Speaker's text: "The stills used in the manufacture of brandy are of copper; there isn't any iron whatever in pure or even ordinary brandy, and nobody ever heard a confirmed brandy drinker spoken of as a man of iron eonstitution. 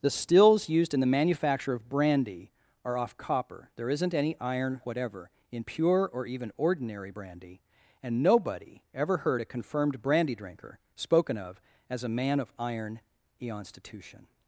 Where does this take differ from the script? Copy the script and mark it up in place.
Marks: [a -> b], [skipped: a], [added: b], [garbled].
"The stills used in the manufacture of brandy are [of -> off] copper; there isn't any iron whatever in pure or even ordinary brandy, and nobody ever heard a confirmed brandy drinker spoken of as a man of iron eonstitution.